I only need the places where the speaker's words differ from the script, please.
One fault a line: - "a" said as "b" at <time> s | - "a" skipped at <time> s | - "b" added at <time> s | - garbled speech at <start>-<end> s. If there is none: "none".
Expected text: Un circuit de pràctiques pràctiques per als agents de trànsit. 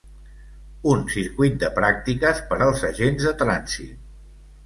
- "pràctiques" skipped at 2.4 s